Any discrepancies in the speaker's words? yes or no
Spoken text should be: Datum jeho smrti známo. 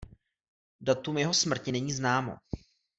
yes